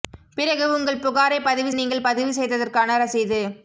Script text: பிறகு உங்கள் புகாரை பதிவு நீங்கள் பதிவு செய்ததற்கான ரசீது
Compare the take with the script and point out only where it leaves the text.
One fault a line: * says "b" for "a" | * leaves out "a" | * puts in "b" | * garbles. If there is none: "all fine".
all fine